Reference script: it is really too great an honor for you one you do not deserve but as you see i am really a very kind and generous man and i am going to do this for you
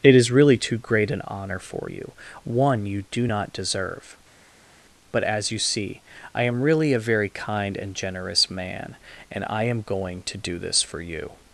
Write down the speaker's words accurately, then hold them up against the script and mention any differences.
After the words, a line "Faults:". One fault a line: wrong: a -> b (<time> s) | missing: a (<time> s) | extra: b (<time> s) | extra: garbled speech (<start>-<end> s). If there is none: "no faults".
it is really too great an honor for you one you do not deserve but as you see i am really a very kind and generous man and i am going to do this for you
Faults:
no faults